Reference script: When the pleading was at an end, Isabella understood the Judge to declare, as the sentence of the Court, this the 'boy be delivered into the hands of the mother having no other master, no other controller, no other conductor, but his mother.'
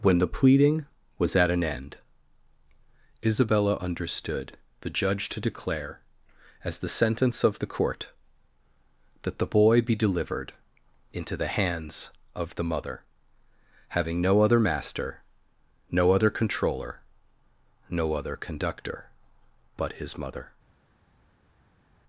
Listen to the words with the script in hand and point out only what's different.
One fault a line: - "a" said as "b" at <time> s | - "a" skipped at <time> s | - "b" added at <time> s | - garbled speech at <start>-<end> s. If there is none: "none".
- "this" said as "that" at 9.2 s